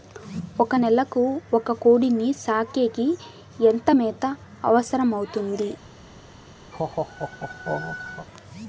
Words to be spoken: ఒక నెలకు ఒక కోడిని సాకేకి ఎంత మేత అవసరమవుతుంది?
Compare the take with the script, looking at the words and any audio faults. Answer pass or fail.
fail